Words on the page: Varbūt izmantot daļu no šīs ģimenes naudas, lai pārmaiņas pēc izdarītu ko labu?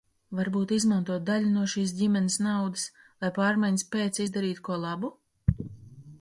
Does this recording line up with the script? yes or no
yes